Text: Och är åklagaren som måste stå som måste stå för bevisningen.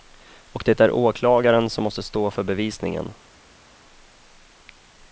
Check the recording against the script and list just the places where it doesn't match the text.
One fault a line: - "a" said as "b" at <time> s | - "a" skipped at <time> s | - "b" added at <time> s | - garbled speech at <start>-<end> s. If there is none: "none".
- "det" added at 0.7 s
- "som måste stå" skipped at 2.3 s